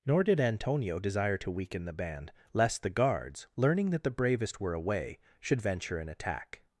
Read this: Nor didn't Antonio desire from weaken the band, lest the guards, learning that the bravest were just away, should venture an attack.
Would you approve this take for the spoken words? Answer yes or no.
no